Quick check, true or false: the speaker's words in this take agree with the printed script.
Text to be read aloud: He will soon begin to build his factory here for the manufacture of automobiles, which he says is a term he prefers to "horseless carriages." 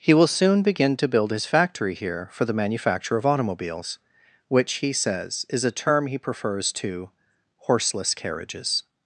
true